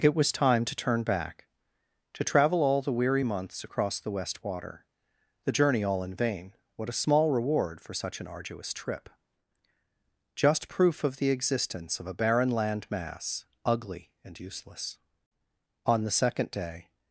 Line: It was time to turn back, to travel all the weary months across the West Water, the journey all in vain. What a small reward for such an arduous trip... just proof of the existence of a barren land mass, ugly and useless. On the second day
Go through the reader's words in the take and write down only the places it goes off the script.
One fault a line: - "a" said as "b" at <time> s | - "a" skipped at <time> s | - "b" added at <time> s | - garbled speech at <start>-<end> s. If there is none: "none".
none